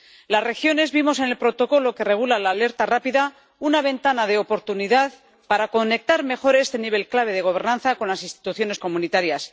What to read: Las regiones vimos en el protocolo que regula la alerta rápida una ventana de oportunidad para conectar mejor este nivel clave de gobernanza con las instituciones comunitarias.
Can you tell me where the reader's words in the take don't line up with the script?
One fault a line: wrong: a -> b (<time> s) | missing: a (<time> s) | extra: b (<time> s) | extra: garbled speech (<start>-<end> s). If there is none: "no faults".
no faults